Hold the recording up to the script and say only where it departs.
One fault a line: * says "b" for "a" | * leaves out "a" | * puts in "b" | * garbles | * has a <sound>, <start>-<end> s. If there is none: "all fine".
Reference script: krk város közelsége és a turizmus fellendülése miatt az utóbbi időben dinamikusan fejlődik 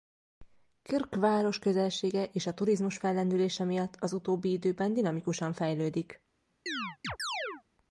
* has a chirp, 6.7-7.6 s